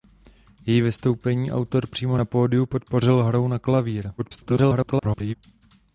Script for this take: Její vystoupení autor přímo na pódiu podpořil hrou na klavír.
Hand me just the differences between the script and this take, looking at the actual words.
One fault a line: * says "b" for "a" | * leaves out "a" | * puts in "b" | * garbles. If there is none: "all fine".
* garbles